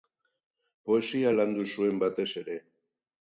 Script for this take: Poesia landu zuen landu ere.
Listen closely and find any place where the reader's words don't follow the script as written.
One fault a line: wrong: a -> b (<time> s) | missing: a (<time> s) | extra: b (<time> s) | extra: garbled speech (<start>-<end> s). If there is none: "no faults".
wrong: landu -> batez (2.0 s)